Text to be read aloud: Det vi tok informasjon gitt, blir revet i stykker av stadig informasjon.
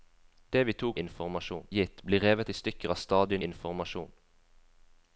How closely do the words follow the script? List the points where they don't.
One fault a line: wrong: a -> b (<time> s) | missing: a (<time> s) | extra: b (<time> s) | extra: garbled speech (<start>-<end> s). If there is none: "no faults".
no faults